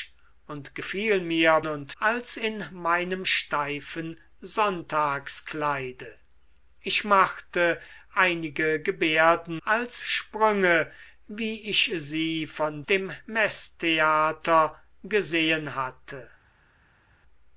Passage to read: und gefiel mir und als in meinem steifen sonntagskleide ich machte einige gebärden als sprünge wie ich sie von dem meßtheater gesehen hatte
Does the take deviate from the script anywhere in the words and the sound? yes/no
no